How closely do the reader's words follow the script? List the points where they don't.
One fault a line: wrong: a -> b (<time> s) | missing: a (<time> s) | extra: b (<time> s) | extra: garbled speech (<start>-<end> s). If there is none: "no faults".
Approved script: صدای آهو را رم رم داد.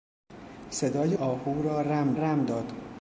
no faults